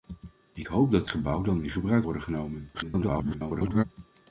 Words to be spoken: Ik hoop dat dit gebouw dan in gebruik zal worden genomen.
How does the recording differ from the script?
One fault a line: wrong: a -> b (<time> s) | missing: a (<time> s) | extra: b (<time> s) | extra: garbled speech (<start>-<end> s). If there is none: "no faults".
missing: dit (1.0 s)
missing: zal (2.1 s)
extra: garbled speech (2.7-3.8 s)